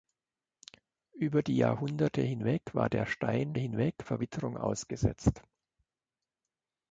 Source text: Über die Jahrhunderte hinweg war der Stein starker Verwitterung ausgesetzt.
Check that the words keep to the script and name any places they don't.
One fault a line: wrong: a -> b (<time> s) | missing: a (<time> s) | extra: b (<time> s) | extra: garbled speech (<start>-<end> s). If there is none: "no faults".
wrong: starker -> hinweg (3.5 s)